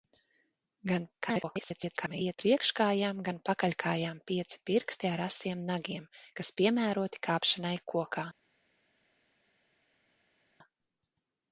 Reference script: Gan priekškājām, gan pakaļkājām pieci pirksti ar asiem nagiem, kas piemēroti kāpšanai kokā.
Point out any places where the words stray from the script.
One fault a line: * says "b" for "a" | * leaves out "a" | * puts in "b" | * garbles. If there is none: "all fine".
* garbles